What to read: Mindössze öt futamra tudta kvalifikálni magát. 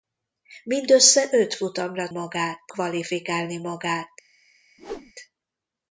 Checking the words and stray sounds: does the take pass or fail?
fail